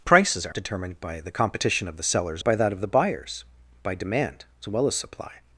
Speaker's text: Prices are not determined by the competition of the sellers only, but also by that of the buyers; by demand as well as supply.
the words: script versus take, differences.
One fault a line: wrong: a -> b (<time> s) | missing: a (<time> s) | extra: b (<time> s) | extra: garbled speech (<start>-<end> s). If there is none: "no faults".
missing: not (0.6 s)
missing: only but also (2.4 s)